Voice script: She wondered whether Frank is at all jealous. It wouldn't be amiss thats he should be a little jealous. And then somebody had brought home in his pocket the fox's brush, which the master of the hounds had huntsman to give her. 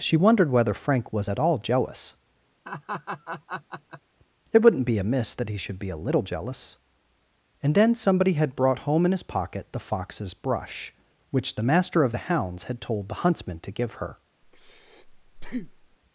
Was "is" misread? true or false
true